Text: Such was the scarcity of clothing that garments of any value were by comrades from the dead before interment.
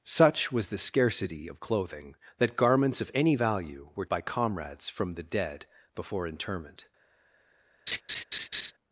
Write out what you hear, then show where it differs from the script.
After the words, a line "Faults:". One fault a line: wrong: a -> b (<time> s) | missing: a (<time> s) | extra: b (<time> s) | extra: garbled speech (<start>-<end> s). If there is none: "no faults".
Such was the scarcity of clothing that garments of any value were by comrades from the dead before interment.
Faults:
no faults